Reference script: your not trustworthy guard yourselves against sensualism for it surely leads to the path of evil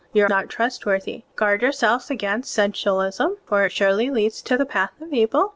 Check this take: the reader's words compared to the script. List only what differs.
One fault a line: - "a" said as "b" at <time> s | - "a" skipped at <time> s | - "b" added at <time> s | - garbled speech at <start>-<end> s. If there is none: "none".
none